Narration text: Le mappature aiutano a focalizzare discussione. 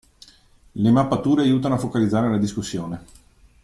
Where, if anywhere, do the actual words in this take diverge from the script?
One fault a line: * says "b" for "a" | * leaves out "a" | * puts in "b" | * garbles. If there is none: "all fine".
* puts in "la"